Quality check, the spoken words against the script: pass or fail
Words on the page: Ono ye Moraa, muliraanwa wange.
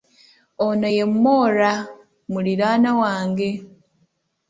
pass